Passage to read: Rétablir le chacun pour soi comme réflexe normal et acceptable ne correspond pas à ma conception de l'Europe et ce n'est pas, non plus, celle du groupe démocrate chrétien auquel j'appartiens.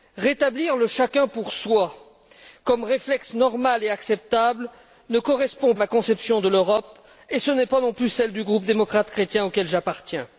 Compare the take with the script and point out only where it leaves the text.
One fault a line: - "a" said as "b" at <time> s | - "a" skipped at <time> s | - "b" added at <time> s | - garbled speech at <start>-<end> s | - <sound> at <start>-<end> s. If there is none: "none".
- "pas" skipped at 5.7 s